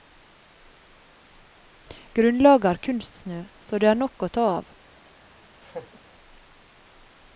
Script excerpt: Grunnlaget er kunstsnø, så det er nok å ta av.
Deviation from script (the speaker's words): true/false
false